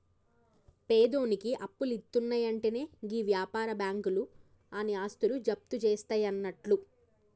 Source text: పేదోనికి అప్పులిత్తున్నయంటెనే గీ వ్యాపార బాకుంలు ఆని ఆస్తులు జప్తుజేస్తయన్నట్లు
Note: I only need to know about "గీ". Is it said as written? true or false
true